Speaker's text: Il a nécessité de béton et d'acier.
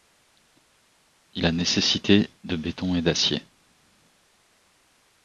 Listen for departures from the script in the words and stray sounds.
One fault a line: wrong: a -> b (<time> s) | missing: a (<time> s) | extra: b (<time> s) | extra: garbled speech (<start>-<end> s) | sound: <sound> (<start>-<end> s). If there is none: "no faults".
no faults